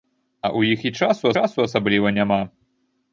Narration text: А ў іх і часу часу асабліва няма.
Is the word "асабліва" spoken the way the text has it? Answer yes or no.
yes